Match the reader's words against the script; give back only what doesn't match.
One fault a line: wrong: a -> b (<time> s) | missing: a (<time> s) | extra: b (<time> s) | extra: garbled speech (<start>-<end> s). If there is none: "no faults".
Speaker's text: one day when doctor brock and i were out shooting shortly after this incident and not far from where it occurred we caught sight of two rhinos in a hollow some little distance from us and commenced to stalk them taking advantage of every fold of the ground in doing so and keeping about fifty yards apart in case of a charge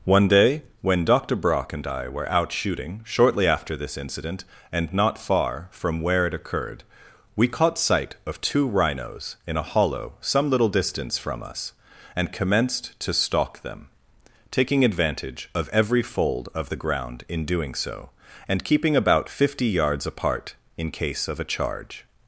no faults